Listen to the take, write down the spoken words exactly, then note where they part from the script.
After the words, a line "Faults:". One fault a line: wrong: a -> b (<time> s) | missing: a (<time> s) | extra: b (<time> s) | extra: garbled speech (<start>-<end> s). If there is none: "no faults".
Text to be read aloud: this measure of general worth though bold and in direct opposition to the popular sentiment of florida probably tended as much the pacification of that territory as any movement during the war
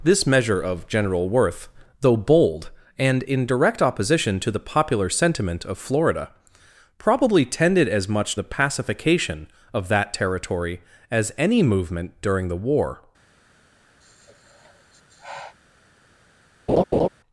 this measure of general worth though bold and in direct opposition to the popular sentiment of florida probably tended as much the pacification of that territory as any movement during the war
Faults:
no faults